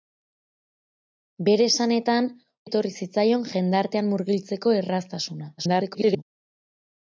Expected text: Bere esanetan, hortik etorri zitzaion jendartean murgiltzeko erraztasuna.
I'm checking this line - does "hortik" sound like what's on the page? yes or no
no